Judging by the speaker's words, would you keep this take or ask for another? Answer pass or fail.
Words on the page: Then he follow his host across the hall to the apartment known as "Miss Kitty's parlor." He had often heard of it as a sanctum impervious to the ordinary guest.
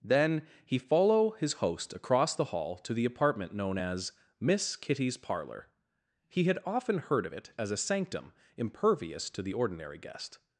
pass